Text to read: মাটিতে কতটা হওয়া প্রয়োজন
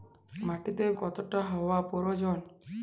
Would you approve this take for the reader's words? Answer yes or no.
yes